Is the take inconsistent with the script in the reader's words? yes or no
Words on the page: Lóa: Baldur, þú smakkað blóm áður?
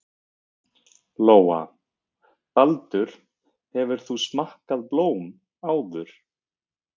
yes